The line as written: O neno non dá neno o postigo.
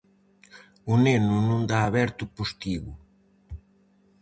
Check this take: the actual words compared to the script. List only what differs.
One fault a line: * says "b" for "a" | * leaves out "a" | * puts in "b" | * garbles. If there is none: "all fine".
* says "aberto" for "neno"